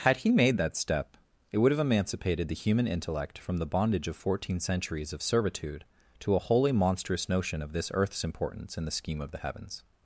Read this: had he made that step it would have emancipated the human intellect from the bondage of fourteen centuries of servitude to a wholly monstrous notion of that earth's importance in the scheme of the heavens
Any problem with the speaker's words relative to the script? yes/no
yes